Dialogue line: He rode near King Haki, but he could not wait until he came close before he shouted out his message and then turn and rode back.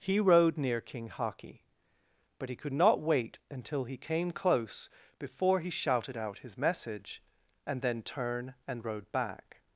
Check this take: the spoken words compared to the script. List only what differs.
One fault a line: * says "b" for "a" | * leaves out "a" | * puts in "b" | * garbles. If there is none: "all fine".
all fine